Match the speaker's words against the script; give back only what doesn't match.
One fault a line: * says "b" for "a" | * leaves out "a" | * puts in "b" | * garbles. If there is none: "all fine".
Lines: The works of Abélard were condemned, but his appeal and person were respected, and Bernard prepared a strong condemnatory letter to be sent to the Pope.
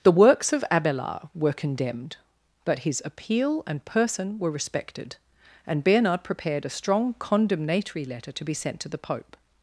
all fine